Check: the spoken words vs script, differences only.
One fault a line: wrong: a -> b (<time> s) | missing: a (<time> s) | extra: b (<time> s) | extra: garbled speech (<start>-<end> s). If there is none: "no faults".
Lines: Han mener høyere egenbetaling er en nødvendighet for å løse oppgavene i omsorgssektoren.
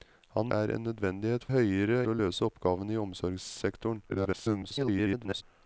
missing: mener høyere egenbetaling (0.5 s)
wrong: for -> høyere (1.5 s)
extra: garbled speech (4.1-5.4 s)